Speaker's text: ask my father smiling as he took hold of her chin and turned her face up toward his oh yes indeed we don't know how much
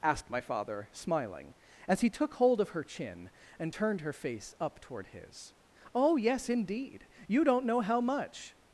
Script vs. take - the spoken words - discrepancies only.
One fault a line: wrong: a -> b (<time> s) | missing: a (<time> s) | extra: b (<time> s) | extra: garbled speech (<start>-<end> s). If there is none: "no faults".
wrong: ask -> asked (0.0 s)
wrong: we -> you (7.3 s)